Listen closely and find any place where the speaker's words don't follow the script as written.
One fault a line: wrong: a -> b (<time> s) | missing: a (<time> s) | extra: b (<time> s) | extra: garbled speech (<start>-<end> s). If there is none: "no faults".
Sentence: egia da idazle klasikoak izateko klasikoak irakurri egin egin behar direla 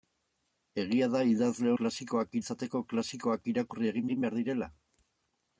no faults